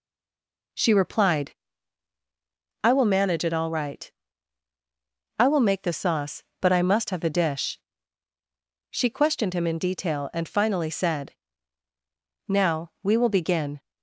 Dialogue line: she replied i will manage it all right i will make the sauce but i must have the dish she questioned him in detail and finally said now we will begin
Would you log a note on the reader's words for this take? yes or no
no